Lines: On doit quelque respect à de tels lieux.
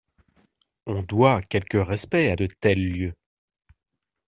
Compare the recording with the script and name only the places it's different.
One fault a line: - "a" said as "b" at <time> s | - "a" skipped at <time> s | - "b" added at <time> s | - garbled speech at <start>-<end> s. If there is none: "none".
none